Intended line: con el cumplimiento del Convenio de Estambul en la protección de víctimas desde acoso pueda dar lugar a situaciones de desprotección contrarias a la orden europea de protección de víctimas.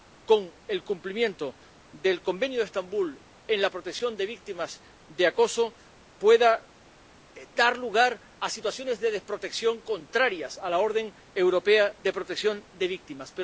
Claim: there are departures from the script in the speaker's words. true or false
true